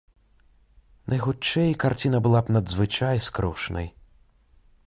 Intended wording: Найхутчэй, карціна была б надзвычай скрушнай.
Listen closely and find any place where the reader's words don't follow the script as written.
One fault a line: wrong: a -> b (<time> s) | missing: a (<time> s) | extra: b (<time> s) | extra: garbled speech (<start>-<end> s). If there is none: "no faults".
no faults